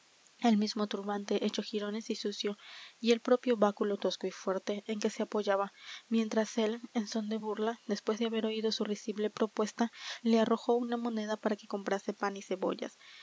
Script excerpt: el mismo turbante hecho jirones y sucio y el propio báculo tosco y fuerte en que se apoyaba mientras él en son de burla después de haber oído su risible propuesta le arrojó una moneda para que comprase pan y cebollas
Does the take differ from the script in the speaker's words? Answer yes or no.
no